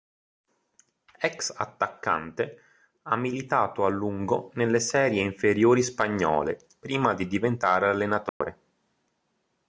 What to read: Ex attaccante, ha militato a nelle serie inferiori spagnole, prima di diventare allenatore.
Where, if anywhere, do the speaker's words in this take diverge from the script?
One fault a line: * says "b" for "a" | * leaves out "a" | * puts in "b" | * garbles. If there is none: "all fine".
* puts in "lungo"